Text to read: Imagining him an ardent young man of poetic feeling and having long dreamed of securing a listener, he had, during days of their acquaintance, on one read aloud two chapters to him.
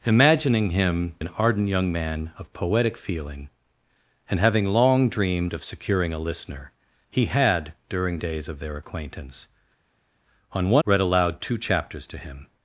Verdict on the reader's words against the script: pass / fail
pass